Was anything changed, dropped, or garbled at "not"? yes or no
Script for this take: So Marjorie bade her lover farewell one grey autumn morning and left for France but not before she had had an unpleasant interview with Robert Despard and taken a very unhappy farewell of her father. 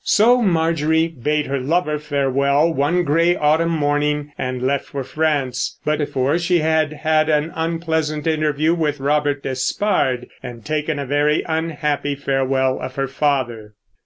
yes